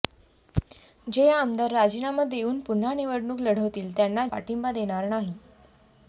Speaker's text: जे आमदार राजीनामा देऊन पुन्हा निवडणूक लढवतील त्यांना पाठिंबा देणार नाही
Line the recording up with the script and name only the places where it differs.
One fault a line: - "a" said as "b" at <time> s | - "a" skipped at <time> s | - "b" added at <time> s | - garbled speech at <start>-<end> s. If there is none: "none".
none